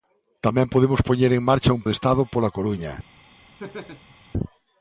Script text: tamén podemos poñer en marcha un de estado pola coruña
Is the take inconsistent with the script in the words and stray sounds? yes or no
yes